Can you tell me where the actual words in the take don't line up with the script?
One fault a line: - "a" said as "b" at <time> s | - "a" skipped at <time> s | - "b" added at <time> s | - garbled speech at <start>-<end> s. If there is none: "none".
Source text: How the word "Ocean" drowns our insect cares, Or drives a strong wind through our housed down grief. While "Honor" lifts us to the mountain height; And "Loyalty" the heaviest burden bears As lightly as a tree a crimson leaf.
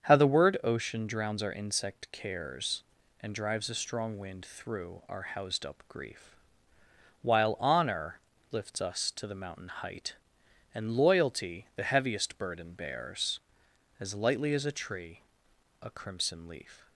- "Or" said as "And" at 3.2 s
- "down" said as "up" at 5.7 s